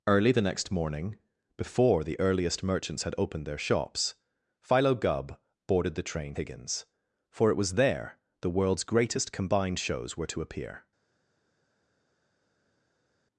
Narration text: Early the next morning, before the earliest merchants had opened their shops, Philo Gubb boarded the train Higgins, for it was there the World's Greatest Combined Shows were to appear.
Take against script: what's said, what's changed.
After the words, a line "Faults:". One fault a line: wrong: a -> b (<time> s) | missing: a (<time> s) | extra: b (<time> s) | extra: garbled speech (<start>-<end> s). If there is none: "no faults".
Early the next morning, before the earliest merchants had opened their shops, Philo Gubb boarded the train Higgins, for it was there the World's Greatest Combined Shows were to appear.
Faults:
no faults